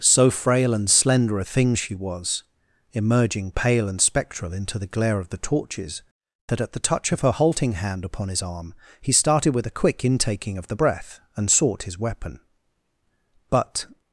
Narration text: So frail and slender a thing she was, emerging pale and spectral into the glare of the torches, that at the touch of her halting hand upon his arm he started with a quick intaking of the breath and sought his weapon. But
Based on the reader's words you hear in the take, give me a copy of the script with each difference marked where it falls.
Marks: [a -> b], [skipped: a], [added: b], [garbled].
So frail and slender a thing she was, emerging pale and spectral into the glare of the torches, that at the touch of her halting hand upon his arm he started with a quick intaking of the breath and sought his weapon. But